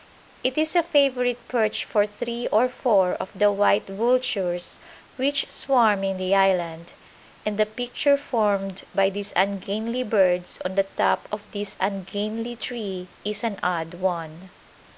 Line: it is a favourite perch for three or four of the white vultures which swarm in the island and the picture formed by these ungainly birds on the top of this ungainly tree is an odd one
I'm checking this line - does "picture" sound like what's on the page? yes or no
yes